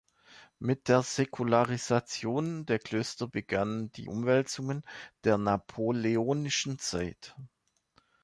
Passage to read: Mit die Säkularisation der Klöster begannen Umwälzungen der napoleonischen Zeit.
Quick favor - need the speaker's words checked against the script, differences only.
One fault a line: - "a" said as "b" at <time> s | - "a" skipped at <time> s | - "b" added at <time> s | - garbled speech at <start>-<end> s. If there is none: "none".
- "die" said as "der" at 0.9 s
- "die" added at 3.9 s